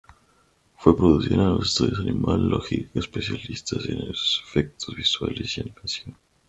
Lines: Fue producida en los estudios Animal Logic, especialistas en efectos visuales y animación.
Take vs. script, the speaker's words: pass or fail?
pass